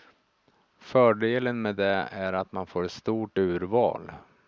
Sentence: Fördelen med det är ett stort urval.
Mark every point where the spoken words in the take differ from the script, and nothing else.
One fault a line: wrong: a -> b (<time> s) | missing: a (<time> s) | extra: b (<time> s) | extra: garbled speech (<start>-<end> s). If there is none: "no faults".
extra: att man får (2.3 s)